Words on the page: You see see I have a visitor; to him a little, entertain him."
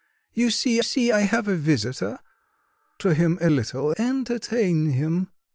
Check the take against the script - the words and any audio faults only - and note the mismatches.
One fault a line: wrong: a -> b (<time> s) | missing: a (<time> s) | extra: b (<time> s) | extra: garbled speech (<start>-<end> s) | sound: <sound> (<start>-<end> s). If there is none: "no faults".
no faults